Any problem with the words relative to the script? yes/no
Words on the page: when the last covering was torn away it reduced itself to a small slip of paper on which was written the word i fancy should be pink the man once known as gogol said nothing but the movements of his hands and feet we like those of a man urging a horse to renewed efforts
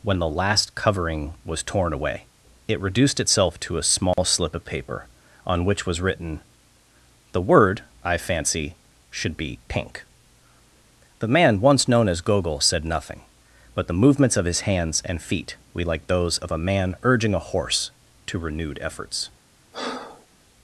no